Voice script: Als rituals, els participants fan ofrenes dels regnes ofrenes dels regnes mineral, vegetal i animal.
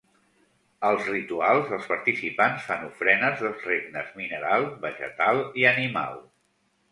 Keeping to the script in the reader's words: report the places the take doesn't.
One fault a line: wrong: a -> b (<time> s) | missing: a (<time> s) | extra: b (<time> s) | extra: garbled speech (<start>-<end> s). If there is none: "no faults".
missing: ofrenes dels regnes (4.2 s)